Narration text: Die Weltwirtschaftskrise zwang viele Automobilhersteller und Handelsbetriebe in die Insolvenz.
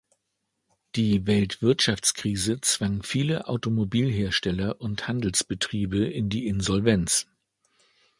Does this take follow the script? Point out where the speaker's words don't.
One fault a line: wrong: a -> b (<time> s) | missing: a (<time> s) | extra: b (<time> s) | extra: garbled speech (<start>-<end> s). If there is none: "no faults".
no faults